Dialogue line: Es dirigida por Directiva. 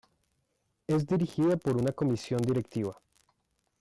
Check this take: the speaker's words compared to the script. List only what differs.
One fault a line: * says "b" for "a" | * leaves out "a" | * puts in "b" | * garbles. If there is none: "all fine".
* puts in "una Comisión"